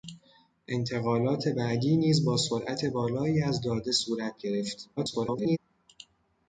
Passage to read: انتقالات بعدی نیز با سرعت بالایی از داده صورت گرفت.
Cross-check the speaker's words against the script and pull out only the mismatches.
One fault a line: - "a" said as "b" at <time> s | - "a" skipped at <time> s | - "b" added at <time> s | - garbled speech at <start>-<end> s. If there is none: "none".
- garbled speech at 5.0-5.6 s